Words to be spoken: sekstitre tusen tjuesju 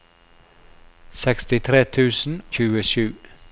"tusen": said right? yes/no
yes